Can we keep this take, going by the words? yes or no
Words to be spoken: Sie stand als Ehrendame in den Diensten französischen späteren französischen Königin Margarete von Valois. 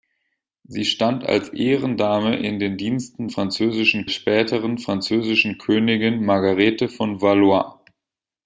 yes